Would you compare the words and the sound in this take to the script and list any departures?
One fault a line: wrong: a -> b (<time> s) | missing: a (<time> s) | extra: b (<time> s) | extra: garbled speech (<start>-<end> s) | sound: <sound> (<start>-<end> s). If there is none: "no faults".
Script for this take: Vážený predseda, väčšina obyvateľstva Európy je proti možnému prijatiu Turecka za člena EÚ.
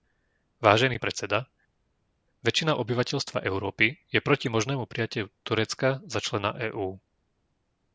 no faults